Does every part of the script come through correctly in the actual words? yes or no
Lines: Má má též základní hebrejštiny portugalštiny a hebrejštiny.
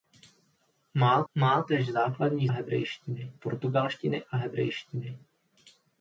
yes